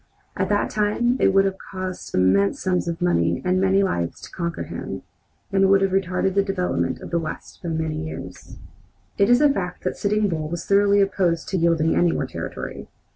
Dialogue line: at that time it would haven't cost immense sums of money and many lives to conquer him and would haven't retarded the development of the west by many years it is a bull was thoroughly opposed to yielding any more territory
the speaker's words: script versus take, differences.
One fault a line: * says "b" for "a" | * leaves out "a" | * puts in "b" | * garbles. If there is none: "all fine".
* says "have" for "haven't"
* says "have" for "haven't"
* puts in "fact that sitting"